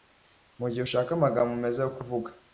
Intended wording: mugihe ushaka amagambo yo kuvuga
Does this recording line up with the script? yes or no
no